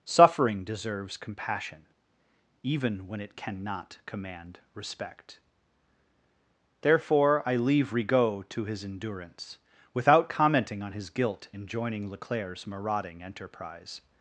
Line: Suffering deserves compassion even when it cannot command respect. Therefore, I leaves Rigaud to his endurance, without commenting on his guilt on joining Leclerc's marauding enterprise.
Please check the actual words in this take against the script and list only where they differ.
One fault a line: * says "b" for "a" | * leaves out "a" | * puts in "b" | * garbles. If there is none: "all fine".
* says "leave" for "leaves"
* says "in" for "on"